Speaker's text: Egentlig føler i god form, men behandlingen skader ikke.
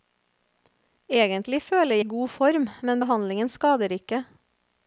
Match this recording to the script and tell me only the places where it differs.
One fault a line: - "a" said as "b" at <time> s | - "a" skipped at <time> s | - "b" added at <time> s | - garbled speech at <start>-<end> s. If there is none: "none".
none